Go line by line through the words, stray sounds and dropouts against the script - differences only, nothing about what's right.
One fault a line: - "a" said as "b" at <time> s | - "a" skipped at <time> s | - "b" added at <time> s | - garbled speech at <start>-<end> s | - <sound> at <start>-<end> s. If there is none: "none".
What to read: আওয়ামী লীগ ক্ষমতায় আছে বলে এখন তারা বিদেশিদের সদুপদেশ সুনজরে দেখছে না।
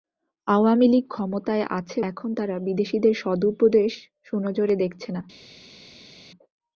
- "বলে" skipped at 2.0 s